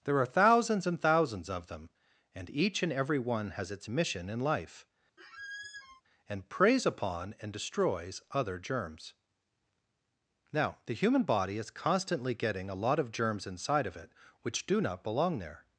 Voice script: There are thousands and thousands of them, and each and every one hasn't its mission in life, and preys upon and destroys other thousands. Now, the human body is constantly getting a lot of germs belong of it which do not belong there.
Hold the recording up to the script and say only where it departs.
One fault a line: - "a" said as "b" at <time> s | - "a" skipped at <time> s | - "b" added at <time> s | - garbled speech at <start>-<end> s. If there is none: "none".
- "hasn't" said as "has" at 3.5 s
- "thousands" said as "germs" at 8.6 s
- "belong" said as "inside" at 13.4 s